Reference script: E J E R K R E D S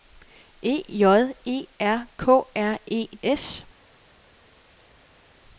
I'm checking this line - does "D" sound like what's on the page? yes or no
no